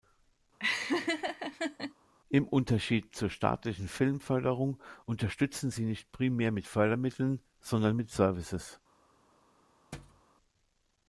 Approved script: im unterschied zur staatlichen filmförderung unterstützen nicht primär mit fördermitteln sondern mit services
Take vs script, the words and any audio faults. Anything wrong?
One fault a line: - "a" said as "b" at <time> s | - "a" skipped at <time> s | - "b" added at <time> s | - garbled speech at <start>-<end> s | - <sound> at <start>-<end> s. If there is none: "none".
- laugh at 0.6-1.9 s
- "sie" added at 5.7 s
- thud at 9.9-10.2 s